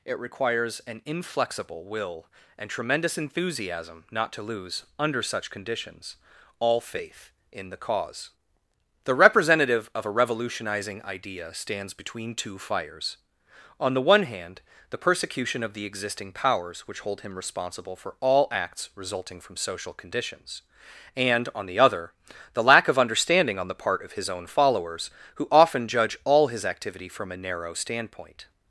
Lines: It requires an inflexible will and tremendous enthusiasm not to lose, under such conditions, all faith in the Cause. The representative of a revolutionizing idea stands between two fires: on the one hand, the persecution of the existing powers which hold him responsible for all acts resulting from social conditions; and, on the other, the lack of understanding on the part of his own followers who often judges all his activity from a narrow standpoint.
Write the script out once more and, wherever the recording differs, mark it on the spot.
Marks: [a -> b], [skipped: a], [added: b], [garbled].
It requires an inflexible will and tremendous enthusiasm not to lose, under such conditions, all faith in the Cause. The representative of a revolutionizing idea stands between two fires: on the one hand, the persecution of the existing powers which hold him responsible for all acts resulting from social conditions; and, on the other, the lack of understanding on the part of his own followers who often [judges -> judge] all his activity from a narrow standpoint.